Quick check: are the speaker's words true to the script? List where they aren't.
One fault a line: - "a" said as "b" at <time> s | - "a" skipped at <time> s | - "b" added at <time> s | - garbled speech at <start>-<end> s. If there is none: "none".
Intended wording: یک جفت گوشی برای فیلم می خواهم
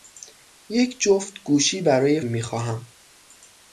- "فیلم" skipped at 2.2 s